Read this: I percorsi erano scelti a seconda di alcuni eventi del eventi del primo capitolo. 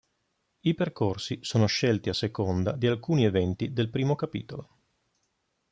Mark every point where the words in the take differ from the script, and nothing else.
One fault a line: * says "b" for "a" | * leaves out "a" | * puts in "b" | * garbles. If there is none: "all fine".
* says "sono" for "erano"
* leaves out "eventi del"